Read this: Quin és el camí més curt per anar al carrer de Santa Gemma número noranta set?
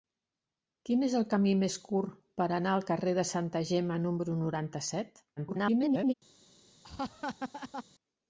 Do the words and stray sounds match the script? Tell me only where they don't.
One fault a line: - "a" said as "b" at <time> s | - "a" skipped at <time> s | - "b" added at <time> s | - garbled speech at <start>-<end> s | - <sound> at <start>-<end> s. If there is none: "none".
- garbled speech at 5.4-6.1 s
- laugh at 6.8-7.8 s